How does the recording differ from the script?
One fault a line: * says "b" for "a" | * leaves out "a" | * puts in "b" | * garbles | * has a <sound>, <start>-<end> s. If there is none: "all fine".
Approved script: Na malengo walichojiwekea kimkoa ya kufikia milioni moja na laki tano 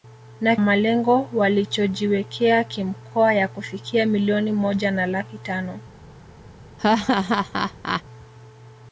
* has a laugh, 6.8-8.0 s